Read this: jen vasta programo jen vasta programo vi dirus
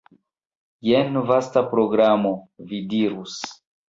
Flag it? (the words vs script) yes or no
yes